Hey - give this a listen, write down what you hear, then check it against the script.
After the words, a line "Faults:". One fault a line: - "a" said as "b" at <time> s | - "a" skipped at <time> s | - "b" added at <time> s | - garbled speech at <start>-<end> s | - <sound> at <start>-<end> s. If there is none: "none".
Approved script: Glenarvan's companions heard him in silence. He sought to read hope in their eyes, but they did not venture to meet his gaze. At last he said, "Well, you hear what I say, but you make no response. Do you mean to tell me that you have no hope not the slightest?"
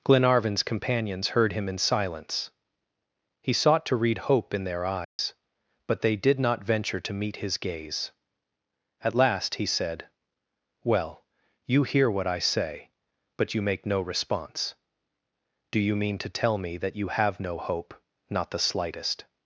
Glenarvan's companions heard him in silence. He sought to read hope in their eyes, but they did not venture to meet his gaze. At last he said, "Well, you hear what I say, but you make no response. Do you mean to tell me that you have no hope not the slightest?"
Faults:
- dropout at 5.0-5.2 s